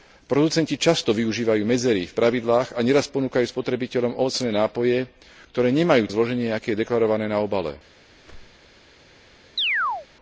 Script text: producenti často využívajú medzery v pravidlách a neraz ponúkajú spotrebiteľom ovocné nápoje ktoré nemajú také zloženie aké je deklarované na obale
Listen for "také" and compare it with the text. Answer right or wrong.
wrong